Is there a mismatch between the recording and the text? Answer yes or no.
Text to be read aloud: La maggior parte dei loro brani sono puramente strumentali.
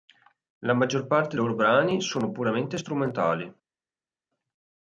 yes